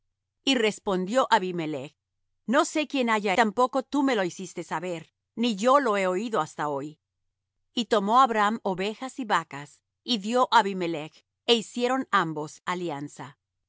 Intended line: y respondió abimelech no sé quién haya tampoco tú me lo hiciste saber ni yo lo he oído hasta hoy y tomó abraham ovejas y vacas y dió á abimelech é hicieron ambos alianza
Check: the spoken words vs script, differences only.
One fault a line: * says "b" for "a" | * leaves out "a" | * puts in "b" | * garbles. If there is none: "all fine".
all fine